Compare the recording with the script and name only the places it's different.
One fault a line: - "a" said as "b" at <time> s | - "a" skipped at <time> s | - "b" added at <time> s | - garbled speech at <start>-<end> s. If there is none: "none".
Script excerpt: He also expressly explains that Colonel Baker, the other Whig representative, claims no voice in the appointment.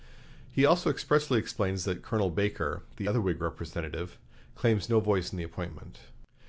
none